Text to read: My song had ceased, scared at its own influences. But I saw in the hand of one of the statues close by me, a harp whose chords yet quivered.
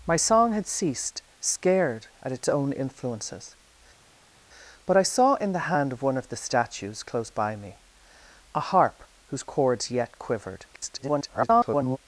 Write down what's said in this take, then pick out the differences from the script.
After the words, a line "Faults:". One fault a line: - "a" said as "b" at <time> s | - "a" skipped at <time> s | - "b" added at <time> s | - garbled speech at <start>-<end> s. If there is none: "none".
My song had ceased, scared at its own influences. But I saw in the hand of one of the statues close by me, a harp whose chords yet quivered. [garbled]
Faults:
- garbled speech at 10.7-12.0 s